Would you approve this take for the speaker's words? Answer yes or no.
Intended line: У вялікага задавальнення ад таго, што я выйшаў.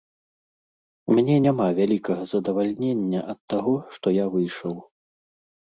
no